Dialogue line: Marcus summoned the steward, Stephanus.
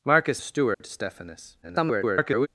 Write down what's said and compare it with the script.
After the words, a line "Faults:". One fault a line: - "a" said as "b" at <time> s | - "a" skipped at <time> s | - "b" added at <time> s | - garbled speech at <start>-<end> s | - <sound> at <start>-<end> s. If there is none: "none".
Marcus the steward, Stephanus. [garbled]
Faults:
- "summoned" skipped at 0.4 s
- dropout at 0.7-0.8 s
- garbled speech at 1.6-2.5 s